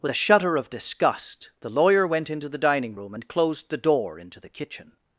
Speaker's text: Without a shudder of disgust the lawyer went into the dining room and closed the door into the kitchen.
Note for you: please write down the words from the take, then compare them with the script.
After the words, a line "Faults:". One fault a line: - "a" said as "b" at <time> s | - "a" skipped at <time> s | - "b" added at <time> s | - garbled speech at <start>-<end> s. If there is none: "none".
With a shudder of disgust the lawyer went into the dining room and closed the door into the kitchen.
Faults:
- "Without" said as "With" at 0.0 s